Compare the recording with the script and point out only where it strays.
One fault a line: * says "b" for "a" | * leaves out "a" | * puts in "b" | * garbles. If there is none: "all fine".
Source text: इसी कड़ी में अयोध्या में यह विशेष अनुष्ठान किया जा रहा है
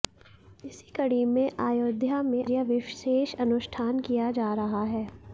all fine